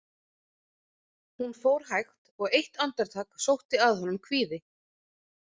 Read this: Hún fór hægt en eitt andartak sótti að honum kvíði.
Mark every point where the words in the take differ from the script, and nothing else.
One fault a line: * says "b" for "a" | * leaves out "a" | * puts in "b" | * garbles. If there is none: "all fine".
* says "og" for "en"